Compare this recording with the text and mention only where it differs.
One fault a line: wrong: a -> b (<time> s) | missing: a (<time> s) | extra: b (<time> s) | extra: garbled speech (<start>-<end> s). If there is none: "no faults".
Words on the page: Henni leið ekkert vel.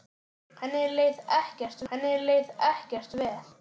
extra: henni leið ekkert (1.9 s)